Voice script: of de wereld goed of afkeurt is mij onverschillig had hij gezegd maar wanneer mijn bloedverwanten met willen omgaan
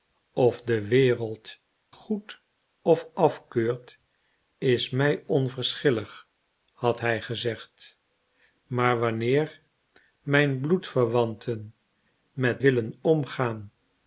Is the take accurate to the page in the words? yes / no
yes